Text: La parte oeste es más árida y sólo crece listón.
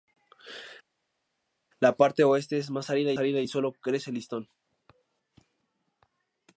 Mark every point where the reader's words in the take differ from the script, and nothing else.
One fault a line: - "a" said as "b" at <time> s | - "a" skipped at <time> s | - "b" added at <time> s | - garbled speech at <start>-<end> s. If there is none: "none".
- "árida" added at 3.2 s